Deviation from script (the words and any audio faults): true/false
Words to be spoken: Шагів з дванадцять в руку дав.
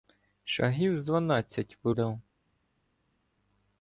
true